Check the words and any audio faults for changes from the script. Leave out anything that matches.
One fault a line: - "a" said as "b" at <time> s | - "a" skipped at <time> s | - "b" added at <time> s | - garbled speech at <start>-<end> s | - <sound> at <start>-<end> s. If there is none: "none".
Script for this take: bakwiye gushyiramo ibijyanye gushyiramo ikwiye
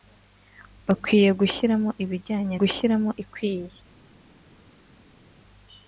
none